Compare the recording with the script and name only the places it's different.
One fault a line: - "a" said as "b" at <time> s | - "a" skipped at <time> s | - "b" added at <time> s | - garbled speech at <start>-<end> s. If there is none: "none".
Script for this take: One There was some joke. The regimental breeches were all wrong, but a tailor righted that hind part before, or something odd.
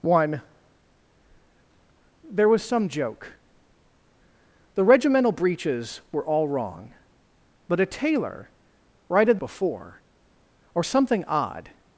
- "that hind part" skipped at 9.4 s